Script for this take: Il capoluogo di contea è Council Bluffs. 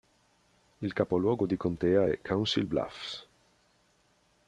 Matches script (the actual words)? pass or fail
pass